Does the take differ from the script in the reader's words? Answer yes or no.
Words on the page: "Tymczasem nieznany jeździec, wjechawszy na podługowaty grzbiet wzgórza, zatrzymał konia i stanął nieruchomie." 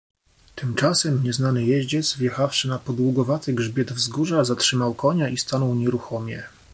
no